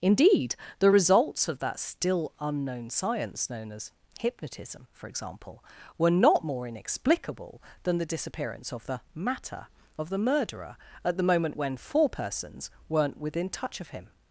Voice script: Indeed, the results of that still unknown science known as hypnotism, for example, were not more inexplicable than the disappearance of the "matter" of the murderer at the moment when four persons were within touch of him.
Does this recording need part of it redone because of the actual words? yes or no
yes